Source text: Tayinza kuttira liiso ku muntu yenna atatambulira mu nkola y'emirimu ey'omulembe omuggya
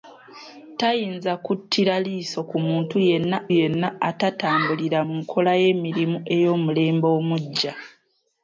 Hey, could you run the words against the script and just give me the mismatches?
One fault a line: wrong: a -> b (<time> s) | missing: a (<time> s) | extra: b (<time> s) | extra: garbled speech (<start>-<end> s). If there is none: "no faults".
extra: yenna (3.6 s)